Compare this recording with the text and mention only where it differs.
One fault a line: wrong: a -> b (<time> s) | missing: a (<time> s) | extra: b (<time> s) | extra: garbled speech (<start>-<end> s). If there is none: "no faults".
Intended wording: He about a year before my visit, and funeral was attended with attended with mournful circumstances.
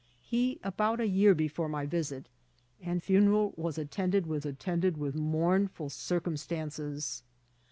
no faults